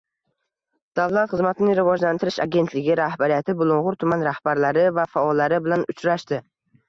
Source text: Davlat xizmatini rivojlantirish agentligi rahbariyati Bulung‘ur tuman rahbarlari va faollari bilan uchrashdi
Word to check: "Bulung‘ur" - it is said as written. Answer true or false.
true